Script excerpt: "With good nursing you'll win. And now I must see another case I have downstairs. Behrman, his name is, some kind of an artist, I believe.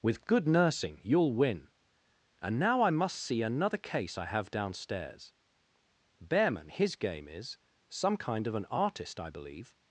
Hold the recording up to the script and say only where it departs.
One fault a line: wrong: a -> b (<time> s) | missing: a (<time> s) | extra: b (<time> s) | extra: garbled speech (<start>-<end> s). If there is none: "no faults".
wrong: name -> game (7.0 s)